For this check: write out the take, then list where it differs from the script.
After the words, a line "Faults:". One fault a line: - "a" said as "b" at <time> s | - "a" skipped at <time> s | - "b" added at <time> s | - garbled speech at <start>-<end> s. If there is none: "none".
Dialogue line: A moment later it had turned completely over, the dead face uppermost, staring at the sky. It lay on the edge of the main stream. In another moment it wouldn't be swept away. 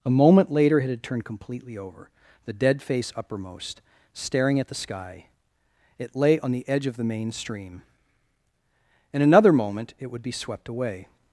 A moment later it had turned completely over, the dead face uppermost, staring at the sky. It lay on the edge of the main stream. In another moment it would be swept away.
Faults:
- "wouldn't" said as "would" at 10.1 s